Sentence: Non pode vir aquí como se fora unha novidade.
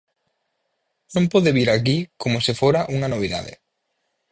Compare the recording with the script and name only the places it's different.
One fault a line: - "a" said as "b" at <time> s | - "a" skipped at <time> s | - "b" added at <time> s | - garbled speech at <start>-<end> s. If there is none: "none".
none